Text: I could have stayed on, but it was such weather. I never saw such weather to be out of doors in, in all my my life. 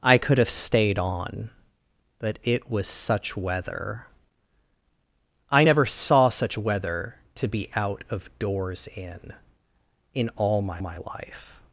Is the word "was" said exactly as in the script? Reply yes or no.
yes